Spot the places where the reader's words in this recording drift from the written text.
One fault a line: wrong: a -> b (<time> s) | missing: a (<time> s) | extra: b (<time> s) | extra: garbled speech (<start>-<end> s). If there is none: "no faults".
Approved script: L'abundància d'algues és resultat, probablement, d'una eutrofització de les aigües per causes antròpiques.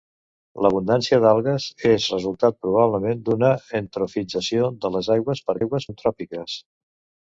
wrong: causes -> aigües (5.6 s)